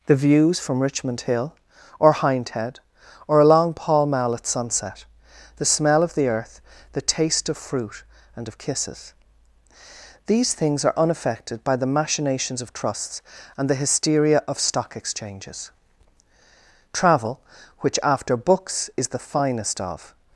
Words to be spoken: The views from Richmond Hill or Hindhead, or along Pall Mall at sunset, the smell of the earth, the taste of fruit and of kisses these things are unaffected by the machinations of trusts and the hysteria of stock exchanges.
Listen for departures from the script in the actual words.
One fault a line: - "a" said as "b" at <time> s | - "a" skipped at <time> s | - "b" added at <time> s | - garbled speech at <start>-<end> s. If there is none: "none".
- "Travel which after books is the finest of" added at 16.9 s